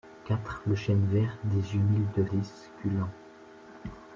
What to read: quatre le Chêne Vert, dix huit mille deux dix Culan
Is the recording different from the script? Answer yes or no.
no